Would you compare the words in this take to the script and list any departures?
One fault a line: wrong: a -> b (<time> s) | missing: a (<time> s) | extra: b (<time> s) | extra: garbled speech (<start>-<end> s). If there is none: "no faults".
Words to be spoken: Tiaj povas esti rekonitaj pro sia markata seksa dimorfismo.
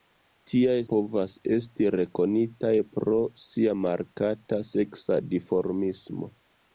no faults